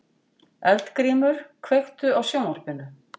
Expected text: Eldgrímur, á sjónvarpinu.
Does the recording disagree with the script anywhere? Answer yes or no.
yes